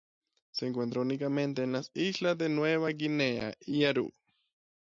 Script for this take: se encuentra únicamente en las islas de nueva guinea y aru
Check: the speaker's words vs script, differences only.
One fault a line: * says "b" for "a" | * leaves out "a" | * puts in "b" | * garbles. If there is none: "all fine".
all fine